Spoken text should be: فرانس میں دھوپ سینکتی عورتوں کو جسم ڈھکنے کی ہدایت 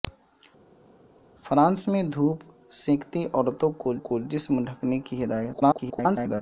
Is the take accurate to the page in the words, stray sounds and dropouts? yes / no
no